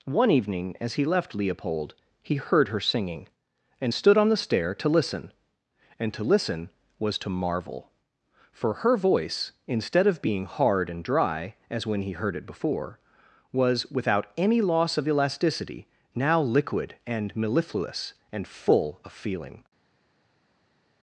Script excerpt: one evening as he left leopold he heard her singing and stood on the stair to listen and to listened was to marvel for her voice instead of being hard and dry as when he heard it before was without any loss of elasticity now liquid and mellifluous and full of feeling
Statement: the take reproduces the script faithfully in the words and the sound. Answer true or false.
false